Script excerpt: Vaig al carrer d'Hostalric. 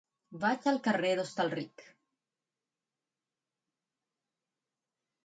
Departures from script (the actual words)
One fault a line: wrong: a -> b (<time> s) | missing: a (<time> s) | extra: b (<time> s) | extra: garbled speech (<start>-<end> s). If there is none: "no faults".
no faults